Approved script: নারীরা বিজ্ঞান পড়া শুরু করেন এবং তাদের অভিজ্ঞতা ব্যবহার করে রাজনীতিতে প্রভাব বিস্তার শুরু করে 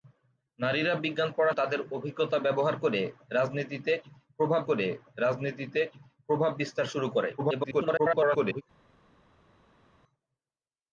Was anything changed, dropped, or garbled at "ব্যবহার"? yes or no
yes